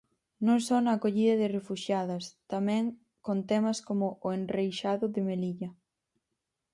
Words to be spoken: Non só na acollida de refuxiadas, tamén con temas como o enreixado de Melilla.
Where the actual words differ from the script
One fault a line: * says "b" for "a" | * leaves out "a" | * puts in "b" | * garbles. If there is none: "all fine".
all fine